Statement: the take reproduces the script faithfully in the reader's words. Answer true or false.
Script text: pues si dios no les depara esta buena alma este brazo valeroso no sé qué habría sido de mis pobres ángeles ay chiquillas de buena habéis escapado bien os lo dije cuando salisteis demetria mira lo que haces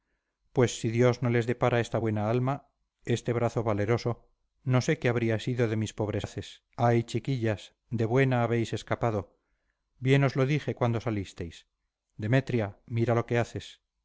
false